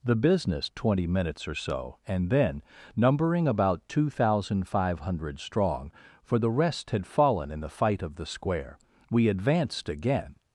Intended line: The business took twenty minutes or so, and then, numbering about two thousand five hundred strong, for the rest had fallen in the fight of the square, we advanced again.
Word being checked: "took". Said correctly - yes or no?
no